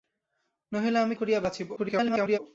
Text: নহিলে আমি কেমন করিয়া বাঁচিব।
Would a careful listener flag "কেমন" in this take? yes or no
yes